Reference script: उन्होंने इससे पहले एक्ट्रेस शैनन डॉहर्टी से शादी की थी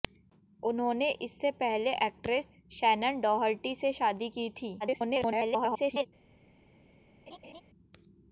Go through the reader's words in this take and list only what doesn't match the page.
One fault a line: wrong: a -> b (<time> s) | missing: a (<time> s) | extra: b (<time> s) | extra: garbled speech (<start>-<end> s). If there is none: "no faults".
extra: garbled speech (4.8-6.1 s)